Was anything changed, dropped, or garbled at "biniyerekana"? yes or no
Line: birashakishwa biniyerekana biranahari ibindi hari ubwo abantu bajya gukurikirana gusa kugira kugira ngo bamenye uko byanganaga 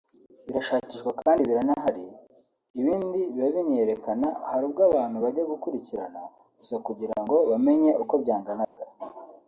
yes